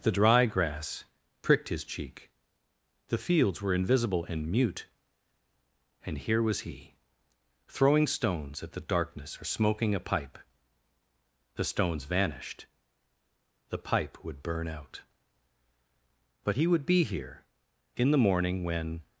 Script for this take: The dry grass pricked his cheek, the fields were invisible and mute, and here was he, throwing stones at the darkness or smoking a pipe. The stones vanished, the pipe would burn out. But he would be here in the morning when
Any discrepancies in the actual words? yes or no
no